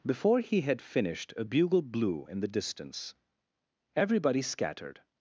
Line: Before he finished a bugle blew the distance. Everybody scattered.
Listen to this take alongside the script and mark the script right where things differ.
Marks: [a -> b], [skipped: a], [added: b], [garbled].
Before he [added: had] finished a bugle blew [added: in] the distance. Everybody scattered.